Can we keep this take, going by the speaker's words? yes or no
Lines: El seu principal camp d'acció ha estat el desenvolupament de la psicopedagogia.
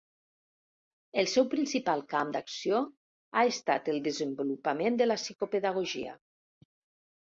yes